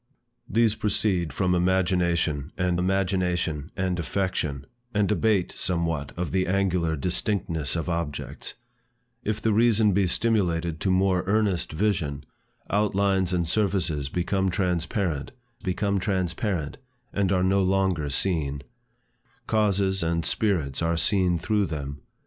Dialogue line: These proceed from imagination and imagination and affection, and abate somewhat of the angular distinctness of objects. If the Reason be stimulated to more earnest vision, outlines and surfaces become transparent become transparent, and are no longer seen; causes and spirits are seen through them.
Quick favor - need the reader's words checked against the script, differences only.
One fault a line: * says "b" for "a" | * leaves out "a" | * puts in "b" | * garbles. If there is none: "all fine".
all fine